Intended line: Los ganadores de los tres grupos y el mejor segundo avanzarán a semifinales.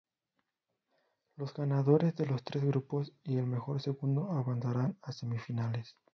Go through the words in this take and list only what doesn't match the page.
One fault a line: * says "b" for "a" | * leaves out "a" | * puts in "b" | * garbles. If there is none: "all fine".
all fine